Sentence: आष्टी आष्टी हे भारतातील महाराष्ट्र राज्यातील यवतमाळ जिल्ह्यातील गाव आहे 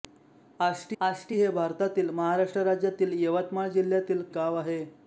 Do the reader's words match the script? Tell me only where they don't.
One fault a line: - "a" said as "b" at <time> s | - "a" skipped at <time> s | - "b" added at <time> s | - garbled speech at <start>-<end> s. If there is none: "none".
none